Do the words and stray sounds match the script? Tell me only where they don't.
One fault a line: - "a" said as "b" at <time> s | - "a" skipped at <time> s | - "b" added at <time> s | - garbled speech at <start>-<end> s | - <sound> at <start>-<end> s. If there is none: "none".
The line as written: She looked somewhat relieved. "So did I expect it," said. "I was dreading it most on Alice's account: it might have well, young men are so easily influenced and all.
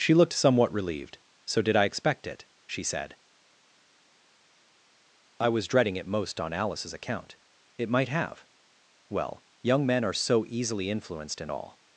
- "she" added at 2.6 s